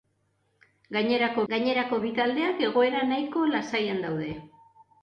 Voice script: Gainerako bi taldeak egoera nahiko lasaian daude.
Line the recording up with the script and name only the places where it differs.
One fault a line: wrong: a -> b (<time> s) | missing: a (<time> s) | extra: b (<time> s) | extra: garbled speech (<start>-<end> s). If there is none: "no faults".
extra: gainerako (1.5 s)